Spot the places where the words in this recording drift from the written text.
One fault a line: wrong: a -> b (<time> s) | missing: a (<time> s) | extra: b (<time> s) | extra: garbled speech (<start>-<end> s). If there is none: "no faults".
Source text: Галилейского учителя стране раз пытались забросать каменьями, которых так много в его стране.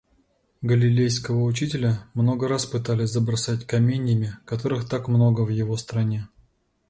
wrong: стране -> много (2.1 s)